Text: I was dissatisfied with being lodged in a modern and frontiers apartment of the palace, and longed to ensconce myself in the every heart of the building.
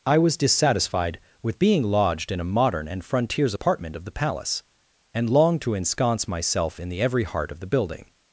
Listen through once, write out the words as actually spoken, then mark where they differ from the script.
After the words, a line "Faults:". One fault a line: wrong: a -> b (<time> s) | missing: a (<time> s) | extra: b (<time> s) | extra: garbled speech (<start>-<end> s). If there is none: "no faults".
I was dissatisfied with being lodged in a modern and frontiers apartment of the palace, and longed to ensconce myself in the every heart of the building.
Faults:
no faults